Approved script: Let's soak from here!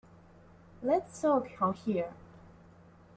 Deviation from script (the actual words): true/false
false